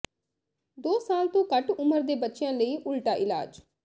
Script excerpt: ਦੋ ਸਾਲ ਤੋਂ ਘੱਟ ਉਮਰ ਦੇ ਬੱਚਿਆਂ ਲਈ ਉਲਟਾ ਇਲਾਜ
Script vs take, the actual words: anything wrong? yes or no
no